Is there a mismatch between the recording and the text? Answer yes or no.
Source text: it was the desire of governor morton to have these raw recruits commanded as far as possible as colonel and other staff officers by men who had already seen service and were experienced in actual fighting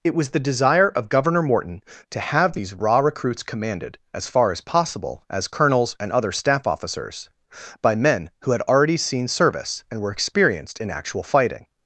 yes